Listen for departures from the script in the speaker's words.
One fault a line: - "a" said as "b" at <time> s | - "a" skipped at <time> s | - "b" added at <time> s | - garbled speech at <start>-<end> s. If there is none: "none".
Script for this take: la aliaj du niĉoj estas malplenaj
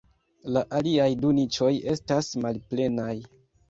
none